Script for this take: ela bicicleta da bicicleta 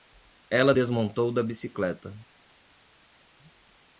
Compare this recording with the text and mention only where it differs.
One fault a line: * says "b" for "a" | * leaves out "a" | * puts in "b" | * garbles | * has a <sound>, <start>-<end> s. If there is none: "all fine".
* says "desmontou" for "bicicleta"